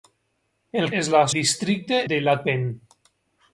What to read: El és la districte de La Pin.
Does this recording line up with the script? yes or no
yes